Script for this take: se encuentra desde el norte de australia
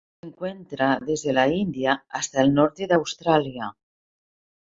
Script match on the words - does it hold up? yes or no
no